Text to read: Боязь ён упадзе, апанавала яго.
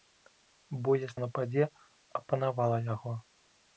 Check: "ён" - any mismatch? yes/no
no